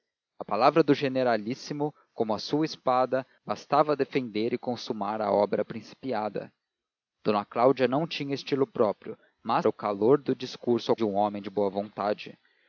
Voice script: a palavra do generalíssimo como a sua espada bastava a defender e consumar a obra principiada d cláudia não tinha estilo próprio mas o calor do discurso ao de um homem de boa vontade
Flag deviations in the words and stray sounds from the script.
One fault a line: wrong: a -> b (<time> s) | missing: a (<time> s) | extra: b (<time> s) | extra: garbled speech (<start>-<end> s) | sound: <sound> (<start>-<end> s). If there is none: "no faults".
no faults